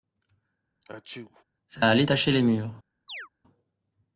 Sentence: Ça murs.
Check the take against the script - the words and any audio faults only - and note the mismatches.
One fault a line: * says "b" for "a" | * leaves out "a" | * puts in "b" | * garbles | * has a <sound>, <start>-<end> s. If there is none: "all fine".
* has a sneeze, 0.8-1.4 s
* puts in "allait tacher les"
* has a chirp, 3.1-3.3 s